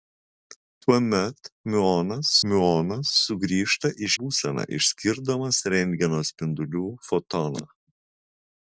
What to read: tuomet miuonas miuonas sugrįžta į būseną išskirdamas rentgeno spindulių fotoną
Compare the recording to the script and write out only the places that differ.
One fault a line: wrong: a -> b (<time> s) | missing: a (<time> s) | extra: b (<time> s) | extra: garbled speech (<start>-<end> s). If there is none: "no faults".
no faults